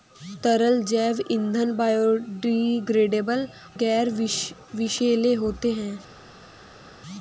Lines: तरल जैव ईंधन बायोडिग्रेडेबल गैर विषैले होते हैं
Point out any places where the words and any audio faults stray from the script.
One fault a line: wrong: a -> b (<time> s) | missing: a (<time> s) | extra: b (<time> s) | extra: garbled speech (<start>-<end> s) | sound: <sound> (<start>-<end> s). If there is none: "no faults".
no faults